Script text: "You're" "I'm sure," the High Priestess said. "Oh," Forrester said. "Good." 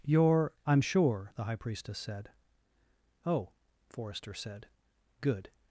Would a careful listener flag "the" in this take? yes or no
no